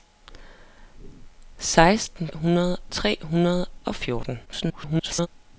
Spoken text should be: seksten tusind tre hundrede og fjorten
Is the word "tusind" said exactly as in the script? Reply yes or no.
no